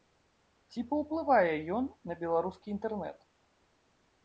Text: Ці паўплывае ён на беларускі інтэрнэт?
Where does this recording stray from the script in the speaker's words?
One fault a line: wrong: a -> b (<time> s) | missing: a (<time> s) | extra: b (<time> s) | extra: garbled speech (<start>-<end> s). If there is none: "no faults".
no faults